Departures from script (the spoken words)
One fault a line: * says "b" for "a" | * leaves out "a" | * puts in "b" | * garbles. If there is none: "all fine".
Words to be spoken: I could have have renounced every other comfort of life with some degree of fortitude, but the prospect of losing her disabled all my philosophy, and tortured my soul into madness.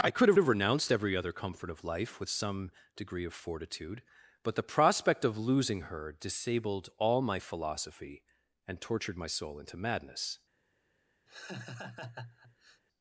all fine